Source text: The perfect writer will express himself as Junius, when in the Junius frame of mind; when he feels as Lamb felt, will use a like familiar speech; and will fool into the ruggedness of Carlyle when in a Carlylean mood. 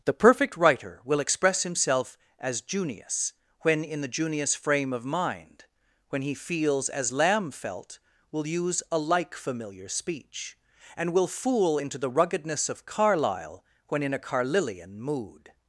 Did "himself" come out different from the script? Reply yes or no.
no